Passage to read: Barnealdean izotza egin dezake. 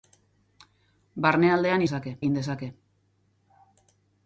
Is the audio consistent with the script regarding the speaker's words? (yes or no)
no